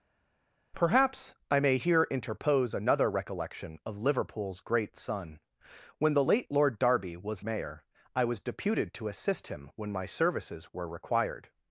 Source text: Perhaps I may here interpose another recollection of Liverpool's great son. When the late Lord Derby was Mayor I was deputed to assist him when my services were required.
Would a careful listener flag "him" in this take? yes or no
no